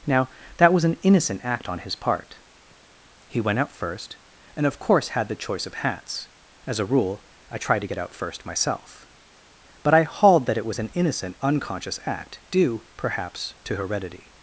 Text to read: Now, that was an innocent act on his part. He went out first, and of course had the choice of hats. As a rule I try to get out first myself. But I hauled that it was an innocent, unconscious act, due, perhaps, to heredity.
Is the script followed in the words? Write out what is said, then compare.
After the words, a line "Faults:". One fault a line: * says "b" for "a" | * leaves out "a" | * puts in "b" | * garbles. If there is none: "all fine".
Now, that was an innocent act on his part. He went out first, and of course had the choice of hats. As a rule I try to get out first myself. But I hauled that it was an innocent, unconscious act, due, perhaps, to heredity.
Faults:
all fine